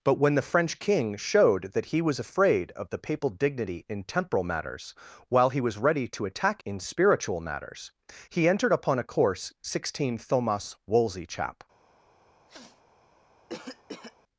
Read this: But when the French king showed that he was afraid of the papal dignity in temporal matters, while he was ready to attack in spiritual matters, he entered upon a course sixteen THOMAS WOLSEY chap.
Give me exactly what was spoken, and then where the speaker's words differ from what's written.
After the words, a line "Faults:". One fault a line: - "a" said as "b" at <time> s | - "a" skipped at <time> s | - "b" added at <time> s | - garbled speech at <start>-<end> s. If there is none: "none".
But when the French king showed that he was afraid of the papal dignity in temporal matters, while he was ready to attack in spiritual matters, he entered upon a course sixteen THOMAS WOLSEY chap.
Faults:
none